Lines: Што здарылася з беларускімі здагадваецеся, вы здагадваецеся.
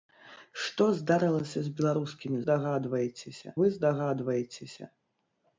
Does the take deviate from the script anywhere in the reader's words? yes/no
no